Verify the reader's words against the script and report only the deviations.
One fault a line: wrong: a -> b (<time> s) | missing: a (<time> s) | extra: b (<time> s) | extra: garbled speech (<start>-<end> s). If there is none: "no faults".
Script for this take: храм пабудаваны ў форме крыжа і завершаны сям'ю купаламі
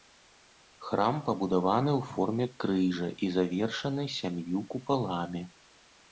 no faults